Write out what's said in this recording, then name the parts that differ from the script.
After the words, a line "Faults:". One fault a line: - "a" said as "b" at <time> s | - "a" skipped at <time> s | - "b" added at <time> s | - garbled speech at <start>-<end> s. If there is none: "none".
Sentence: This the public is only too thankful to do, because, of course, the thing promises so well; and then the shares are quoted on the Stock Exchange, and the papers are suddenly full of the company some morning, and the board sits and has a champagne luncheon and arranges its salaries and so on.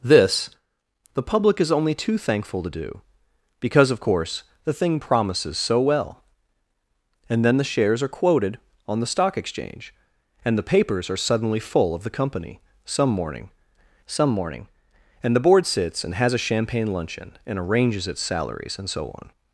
This the public is only too thankful to do, because, of course, the thing promises so well; and then the shares are quoted on the Stock Exchange, and the papers are suddenly full of the company some morning some morning, and the board sits and has a champagne luncheon and arranges its salaries and so on.
Faults:
- "some morning" added at 14.0 s